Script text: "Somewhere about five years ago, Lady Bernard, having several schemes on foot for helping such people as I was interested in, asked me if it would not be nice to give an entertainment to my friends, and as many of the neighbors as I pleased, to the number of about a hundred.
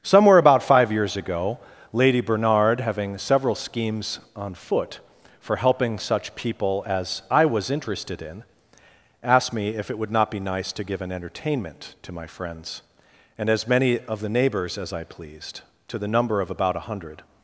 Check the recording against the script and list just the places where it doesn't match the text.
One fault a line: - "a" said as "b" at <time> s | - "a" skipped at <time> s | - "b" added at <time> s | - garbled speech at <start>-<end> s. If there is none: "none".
none